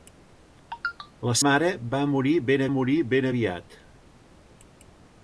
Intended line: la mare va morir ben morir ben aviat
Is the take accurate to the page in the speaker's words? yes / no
yes